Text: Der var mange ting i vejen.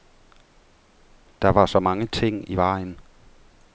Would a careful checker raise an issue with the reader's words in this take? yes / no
yes